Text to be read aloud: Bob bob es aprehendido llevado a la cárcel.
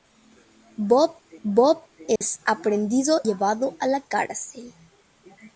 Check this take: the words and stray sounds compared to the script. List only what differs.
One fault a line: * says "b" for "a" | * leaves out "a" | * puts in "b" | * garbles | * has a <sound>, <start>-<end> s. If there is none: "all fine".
* has a dropout, 2.2-2.2 s